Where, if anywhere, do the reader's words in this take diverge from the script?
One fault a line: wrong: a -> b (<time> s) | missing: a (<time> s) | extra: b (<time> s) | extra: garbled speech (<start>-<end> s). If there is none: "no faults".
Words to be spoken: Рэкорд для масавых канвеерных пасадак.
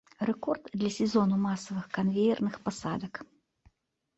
extra: сезону (0.9 s)